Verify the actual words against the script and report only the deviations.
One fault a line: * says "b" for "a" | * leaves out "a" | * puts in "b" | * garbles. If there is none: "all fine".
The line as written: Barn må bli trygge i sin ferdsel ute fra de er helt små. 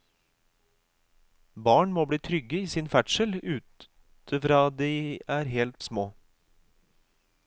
all fine